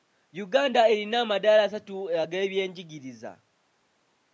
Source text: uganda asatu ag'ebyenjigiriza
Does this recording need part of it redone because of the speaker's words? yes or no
yes